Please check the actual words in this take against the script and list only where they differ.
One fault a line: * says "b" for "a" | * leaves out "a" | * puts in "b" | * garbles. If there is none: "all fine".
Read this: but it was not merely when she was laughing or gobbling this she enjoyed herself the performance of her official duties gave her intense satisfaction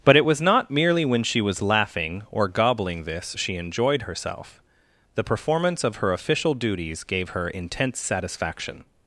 all fine